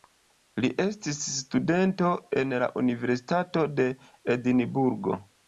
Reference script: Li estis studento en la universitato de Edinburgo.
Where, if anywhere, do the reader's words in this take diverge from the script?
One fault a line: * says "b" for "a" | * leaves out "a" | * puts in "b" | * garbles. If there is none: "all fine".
all fine